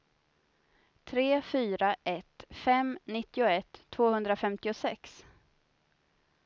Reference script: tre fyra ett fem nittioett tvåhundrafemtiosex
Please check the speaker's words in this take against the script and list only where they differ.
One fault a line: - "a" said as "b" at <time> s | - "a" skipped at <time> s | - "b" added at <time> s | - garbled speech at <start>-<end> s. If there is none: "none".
none